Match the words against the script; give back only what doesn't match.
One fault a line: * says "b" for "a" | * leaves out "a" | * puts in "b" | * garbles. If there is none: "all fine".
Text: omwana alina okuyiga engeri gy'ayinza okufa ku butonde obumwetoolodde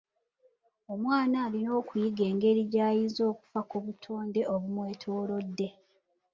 all fine